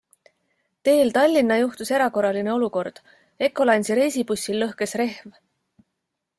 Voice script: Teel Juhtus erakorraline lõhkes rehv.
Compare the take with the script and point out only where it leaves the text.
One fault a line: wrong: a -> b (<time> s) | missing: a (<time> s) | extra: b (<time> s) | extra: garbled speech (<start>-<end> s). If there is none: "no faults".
extra: Tallinna (1.2 s)
extra: olukord Ecolines'i reisibussil (2.5 s)